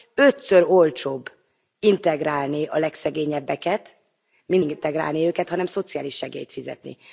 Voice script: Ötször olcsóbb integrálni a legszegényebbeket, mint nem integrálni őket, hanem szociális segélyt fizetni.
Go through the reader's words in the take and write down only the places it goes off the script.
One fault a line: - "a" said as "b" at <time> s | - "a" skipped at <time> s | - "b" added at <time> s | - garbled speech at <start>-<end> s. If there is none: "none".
- "nem" skipped at 4.6 s